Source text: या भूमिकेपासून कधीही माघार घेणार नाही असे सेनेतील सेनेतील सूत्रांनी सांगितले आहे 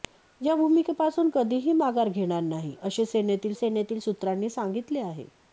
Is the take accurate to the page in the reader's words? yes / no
yes